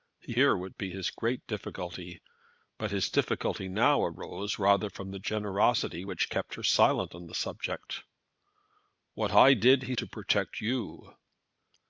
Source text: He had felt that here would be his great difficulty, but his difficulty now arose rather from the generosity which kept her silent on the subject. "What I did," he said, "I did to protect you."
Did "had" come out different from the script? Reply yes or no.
yes